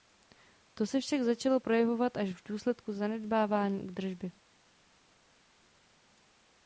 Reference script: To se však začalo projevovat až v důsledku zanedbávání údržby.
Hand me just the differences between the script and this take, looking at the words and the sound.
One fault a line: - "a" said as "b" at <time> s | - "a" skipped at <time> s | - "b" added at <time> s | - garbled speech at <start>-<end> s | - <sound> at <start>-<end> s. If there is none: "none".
none